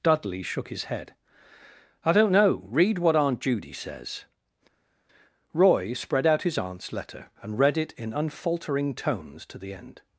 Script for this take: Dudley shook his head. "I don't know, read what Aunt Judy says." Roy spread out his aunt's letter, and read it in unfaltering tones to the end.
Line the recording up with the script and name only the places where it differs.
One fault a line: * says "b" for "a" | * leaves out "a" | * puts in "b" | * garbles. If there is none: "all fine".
all fine